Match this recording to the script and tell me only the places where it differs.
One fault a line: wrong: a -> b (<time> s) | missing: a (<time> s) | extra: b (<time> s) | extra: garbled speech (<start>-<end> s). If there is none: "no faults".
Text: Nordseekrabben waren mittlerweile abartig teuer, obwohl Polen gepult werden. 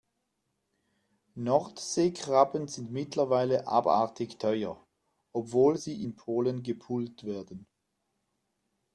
wrong: waren -> sind (2.7 s)
extra: sie in (5.7 s)